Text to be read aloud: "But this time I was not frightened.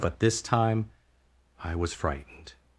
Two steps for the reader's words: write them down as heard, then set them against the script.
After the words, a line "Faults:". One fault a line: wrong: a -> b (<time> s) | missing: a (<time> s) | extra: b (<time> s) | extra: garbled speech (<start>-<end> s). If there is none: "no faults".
"But this time I was frightened.
Faults:
missing: not (1.9 s)